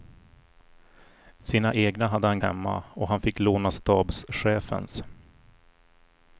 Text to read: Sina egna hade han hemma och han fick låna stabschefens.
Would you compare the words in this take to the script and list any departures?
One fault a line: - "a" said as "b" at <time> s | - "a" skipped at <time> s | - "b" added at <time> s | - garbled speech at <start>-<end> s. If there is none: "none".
none